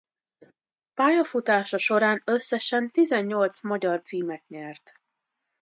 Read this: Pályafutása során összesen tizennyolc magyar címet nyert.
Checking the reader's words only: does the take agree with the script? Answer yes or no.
yes